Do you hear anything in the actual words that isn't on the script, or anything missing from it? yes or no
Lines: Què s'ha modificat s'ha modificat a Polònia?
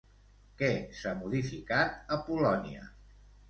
yes